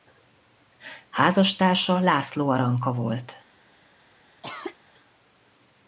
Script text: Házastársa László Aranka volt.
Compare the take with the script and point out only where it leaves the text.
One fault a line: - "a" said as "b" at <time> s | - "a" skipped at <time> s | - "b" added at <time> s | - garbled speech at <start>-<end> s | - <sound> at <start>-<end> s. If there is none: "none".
- cough at 4.4-4.8 s